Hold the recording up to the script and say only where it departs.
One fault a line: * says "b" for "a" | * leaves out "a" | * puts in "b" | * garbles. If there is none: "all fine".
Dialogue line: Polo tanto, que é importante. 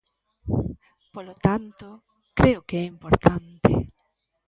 * puts in "creo"